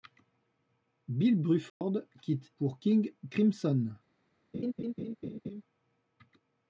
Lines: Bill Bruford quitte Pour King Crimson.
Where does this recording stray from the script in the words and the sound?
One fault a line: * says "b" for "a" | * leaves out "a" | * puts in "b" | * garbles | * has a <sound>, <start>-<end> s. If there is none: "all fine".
* has a dropout, 1.7-1.8 s
* has a laugh, 4.5-5.6 s